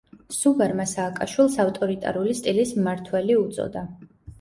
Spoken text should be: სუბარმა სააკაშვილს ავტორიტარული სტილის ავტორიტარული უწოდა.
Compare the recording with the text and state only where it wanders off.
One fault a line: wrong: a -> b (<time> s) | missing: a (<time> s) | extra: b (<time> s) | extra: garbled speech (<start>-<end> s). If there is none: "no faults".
wrong: ავტორიტარული -> მმართველი (2.8 s)